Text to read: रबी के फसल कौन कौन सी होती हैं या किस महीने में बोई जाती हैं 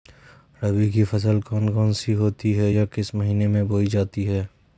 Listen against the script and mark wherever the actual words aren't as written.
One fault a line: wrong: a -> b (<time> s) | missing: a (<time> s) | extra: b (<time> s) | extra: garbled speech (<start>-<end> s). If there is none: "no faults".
wrong: के -> की (0.9 s)